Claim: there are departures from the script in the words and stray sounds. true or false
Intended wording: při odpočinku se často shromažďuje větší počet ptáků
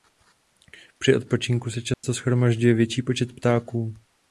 true